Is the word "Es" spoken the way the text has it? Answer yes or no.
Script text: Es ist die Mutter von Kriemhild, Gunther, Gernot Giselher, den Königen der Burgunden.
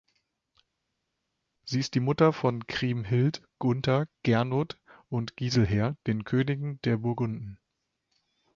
no